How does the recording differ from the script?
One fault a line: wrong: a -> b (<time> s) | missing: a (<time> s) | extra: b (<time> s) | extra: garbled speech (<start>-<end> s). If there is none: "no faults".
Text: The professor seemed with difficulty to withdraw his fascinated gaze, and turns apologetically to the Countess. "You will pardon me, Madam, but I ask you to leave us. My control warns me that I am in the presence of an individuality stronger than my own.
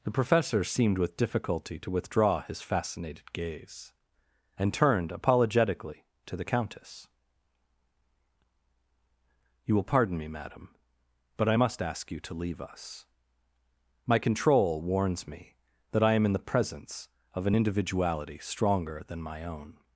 wrong: turns -> turned (4.7 s)
extra: must (11.5 s)